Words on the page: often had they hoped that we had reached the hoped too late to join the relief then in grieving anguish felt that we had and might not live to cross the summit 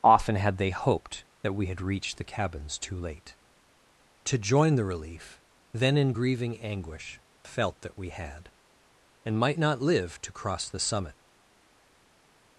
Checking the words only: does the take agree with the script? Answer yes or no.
no